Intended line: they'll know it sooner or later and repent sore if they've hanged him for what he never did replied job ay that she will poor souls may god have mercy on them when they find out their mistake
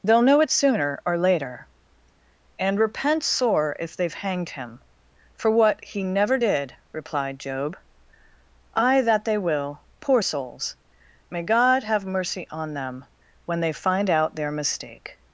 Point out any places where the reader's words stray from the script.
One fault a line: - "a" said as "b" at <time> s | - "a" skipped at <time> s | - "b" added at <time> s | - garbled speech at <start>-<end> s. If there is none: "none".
- "she" said as "they" at 9.2 s